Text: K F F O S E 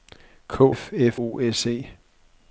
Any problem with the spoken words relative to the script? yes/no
no